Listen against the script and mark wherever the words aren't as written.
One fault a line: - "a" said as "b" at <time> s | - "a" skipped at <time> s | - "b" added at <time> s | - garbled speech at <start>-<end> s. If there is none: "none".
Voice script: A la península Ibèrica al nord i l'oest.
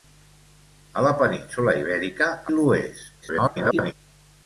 - "al nord" skipped at 2.3 s
- garbled speech at 3.2-3.9 s